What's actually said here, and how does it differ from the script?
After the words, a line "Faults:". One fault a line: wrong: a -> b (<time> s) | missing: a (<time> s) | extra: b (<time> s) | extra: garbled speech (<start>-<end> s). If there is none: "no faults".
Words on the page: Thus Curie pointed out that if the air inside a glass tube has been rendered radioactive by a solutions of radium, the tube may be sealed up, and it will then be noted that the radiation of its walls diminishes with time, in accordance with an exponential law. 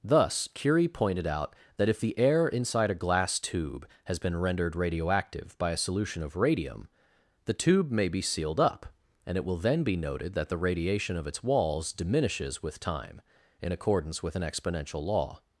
Thus Curie pointed out that if the air inside a glass tube has been rendered radioactive by a solution of radium, the tube may be sealed up, and it will then be noted that the radiation of its walls diminishes with time, in accordance with an exponential law.
Faults:
wrong: solutions -> solution (5.8 s)